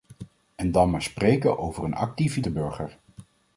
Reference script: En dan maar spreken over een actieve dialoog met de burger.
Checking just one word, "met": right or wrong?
wrong